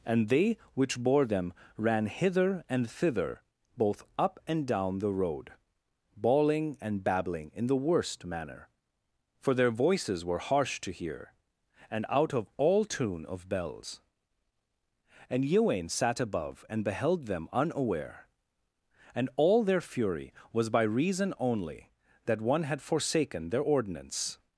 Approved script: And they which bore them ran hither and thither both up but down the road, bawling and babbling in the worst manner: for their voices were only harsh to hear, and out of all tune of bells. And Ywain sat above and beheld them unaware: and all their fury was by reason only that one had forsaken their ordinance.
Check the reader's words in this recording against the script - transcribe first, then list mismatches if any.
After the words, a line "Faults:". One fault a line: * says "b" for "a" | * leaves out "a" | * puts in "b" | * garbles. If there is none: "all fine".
And they which bore them ran hither and thither both up and down the road, bawling and babbling in the worst manner: for their voices were harsh to hear, and out of all tune of bells. And Ywain sat above and beheld them unaware: and all their fury was by reason only that one had forsaken their ordinance.
Faults:
* says "and" for "but"
* leaves out "only"